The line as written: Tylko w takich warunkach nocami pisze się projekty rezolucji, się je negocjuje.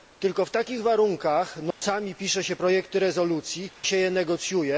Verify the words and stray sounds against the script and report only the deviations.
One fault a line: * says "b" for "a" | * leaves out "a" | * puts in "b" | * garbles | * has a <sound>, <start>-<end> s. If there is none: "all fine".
* has a dropout, 1.7-1.8 s